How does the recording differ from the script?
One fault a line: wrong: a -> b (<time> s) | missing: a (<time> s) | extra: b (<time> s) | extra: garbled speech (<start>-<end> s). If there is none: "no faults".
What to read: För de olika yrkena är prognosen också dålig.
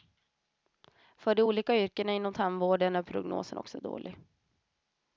extra: inom tandvården (2.1 s)